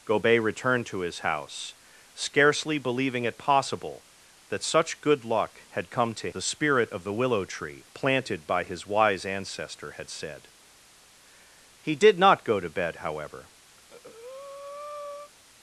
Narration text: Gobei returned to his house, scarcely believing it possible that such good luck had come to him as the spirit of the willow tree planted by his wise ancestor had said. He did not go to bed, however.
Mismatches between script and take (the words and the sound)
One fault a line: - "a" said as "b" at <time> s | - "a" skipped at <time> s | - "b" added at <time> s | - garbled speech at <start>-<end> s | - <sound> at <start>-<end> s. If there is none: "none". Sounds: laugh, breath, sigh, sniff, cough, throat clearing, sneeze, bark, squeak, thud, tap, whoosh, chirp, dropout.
- "him as" skipped at 6.3 s
- breath at 13.8-15.3 s